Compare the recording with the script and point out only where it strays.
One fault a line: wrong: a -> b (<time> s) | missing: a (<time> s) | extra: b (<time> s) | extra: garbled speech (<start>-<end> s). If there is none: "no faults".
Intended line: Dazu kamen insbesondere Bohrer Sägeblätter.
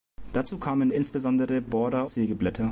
no faults